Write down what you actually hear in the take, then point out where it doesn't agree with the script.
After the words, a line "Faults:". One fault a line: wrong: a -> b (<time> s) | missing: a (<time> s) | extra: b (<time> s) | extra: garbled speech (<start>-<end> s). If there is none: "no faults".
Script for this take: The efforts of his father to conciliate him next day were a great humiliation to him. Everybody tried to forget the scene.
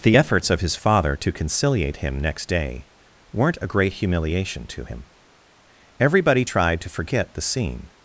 The efforts of his father to conciliate him next day weren't a great humiliation to him. Everybody tried to forget the scene.
Faults:
wrong: were -> weren't (3.3 s)